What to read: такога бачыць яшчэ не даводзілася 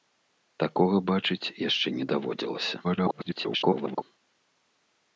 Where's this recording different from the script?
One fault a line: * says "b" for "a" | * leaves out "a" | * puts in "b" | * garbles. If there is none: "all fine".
* garbles